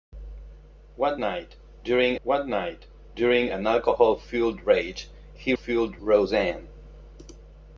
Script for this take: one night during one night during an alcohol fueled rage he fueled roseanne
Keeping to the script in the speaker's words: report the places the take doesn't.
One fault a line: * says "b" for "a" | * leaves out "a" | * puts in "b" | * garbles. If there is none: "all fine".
all fine